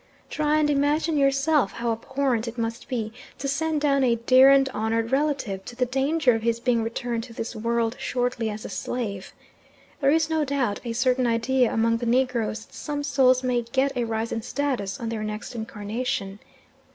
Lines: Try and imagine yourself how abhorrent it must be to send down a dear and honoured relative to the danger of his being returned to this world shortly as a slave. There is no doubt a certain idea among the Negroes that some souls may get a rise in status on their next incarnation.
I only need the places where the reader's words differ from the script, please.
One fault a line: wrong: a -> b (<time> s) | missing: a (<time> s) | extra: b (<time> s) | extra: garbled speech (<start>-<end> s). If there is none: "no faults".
no faults